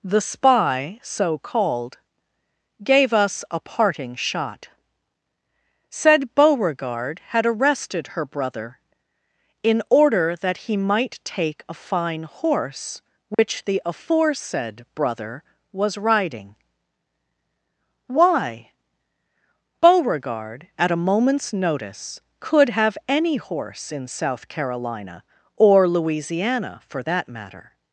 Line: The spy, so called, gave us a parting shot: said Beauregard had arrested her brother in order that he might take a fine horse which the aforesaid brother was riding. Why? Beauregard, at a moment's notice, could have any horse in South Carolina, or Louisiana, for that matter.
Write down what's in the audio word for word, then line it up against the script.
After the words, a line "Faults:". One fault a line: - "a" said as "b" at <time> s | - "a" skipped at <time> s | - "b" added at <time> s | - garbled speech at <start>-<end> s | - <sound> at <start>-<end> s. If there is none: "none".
The spy, so called, gave us a parting shot: said Beauregard had arrested her brother in order that he might take a fine horse which the aforesaid brother was riding. Why? Beauregard, at a moment's notice, could have any horse in South Carolina, or Louisiana, for that matter.
Faults:
- dropout at 13.3-13.4 s